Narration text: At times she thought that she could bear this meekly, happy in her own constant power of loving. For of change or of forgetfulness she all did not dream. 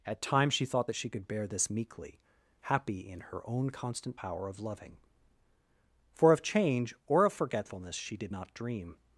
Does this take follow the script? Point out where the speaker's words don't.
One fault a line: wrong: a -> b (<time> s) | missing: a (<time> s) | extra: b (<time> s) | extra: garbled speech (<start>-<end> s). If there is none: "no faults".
missing: all (8.2 s)